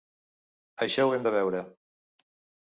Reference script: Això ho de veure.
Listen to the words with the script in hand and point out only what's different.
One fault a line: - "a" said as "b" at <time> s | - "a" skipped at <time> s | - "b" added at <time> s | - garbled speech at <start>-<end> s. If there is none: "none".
- "hem" added at 1.2 s